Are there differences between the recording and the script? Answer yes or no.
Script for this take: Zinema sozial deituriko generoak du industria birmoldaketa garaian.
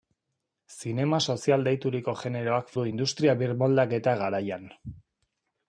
no